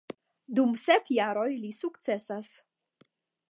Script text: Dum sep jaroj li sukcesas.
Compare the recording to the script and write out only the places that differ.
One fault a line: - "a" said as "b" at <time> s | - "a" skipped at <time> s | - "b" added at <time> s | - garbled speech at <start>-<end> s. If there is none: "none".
none